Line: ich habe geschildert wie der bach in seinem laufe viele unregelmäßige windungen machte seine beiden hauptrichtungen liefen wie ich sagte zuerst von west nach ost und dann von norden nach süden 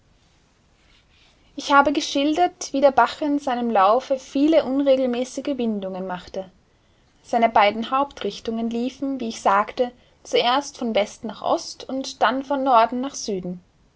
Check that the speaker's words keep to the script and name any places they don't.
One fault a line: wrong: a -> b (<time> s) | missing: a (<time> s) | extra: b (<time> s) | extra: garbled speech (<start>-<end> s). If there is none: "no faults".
no faults